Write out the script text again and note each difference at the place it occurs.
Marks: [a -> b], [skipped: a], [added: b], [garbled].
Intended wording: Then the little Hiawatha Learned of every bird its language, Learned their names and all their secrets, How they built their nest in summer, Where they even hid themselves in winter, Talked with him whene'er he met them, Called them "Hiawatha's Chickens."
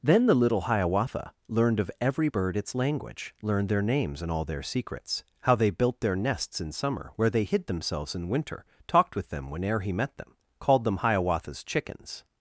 Then the little Hiawatha Learned of every bird its language, Learned their names and all their secrets, How they built their [nest -> nests] in summer, Where they [skipped: even] hid themselves in winter, Talked with [him -> them] whene'er he met them, Called them "Hiawatha's Chickens."